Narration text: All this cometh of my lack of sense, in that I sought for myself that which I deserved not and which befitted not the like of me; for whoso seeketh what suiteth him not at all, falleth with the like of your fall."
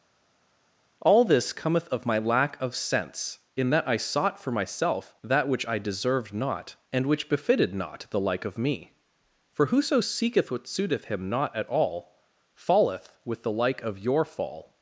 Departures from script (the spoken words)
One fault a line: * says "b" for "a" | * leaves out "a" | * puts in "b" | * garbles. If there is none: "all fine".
all fine